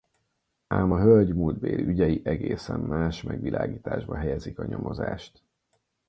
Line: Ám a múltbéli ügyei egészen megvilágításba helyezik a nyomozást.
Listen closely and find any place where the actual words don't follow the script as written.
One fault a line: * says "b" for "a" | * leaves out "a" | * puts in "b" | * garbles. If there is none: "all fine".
* puts in "hölgy"
* puts in "más"